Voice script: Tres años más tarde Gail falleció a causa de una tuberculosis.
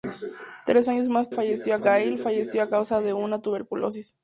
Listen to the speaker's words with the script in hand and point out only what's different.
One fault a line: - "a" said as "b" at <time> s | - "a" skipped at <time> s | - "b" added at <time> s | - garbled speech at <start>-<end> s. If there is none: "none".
- "tarde" said as "falleció" at 1.3 s